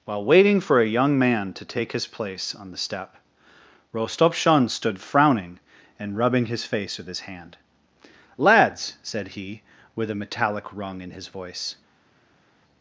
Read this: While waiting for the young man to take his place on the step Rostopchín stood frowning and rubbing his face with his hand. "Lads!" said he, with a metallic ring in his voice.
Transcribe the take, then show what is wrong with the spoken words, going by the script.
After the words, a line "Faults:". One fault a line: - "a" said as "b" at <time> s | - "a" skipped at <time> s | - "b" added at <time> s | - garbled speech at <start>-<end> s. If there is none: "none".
While waiting for a young man to take his place on the step Rostopchín stood frowning and rubbing his face with his hand. "Lads!" said he, with a metallic rung in his voice.
Faults:
- "the" said as "a" at 0.8 s
- "ring" said as "rung" at 10.7 s